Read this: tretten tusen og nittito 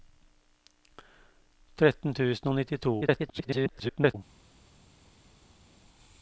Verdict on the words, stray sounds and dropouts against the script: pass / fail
fail